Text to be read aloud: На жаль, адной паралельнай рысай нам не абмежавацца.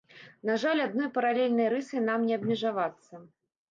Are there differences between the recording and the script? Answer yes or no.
no